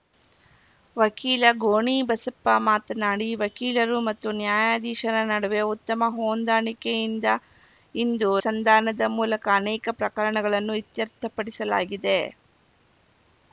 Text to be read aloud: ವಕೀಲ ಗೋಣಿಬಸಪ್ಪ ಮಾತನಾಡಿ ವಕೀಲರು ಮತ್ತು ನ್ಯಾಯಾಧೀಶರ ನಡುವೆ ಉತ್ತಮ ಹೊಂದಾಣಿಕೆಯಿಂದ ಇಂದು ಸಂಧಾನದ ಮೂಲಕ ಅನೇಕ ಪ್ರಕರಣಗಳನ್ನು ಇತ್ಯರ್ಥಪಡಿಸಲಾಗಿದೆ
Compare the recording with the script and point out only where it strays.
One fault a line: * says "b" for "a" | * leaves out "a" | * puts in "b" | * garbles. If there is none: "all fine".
all fine